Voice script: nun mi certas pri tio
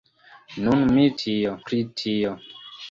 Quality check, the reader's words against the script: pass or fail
fail